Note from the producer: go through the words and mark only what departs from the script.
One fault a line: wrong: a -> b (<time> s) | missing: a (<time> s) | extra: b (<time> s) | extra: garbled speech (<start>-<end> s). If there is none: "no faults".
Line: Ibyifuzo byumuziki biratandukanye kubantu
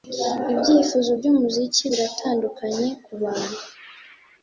no faults